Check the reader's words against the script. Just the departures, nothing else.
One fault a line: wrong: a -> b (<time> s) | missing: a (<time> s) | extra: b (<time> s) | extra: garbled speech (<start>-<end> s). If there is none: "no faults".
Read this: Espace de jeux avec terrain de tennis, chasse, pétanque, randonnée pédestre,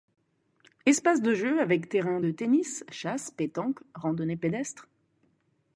no faults